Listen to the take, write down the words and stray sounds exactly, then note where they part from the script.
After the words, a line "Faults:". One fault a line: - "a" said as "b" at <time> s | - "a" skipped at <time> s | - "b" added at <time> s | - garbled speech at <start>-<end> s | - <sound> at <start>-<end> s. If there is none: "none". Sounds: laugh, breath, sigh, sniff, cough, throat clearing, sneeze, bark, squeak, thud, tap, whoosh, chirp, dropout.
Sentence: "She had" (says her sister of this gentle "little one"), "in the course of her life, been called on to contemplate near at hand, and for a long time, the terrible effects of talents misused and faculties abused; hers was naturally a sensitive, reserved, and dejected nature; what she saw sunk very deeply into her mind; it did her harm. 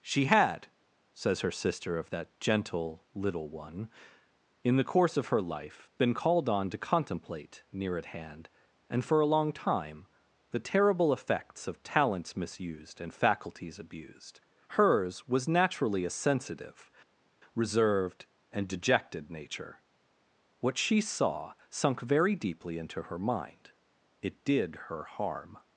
"She had" (says her sister of that gentle "little one"), "in the course of her life, been called on to contemplate near at hand, and for a long time, the terrible effects of talents misused and faculties abused; hers was naturally a sensitive, reserved, and dejected nature; what she saw sunk very deeply into her mind; it did her harm.
Faults:
- "this" said as "that" at 2.1 s